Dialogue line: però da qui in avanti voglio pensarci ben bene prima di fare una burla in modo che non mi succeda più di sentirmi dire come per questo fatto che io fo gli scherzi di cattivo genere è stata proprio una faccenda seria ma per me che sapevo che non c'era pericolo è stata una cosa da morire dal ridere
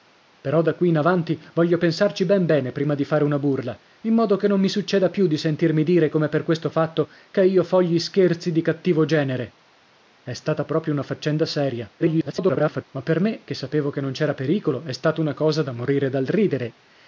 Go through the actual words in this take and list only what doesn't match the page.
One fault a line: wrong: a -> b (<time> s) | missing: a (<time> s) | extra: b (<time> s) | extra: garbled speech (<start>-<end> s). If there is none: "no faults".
extra: garbled speech (12.0-12.8 s)